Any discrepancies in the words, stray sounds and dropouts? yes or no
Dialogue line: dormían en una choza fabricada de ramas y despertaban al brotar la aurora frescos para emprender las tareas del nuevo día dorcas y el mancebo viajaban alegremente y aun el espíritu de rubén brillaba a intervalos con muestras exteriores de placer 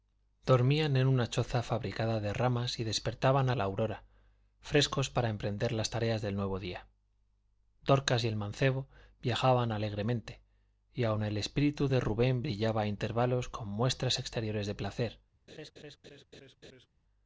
yes